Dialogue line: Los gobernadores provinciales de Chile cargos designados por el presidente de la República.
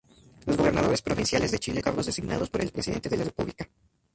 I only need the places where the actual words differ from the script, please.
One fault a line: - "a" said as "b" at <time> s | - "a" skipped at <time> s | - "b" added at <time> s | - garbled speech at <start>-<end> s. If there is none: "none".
none